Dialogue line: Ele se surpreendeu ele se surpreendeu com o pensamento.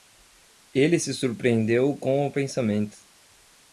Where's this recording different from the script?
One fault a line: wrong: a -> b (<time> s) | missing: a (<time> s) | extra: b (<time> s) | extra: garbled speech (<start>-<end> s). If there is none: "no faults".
missing: ele se surpreendeu (2.0 s)